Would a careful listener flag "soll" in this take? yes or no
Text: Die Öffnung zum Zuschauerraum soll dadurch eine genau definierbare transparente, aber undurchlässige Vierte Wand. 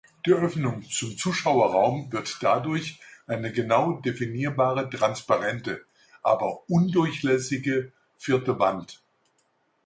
yes